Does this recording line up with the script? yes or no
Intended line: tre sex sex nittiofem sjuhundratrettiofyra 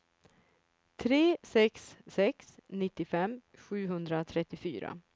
yes